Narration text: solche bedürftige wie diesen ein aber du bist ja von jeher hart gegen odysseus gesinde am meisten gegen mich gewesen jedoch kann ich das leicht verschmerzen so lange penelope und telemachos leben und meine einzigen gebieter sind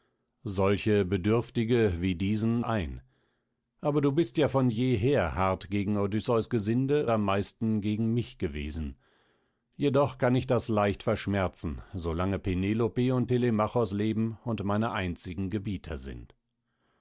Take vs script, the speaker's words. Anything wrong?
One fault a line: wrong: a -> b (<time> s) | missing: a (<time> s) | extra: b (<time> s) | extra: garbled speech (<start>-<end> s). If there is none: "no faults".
no faults